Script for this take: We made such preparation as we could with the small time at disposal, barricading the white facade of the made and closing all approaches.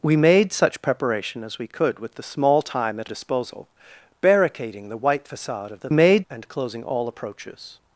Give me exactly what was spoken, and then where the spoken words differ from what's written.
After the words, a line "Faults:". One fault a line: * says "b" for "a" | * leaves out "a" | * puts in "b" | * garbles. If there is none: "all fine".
We made such preparation as we could with the small time at disposal, barricading the white facade of the made and closing all approaches.
Faults:
all fine